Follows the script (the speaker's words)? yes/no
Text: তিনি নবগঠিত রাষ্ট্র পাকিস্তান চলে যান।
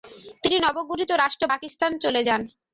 yes